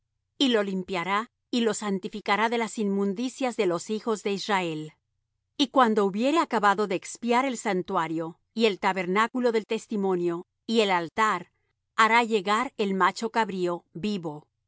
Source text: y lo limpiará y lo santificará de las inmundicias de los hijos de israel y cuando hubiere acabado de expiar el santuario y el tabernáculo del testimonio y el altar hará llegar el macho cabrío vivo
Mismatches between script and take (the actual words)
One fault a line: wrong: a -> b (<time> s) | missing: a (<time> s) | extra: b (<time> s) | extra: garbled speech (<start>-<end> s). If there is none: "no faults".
no faults